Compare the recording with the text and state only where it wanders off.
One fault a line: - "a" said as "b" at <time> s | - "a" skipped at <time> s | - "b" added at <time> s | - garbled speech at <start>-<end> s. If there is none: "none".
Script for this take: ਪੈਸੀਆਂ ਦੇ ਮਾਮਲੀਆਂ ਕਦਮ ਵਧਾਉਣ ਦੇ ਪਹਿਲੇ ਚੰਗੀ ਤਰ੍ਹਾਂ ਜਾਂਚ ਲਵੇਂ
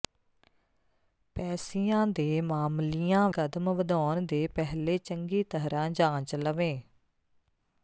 none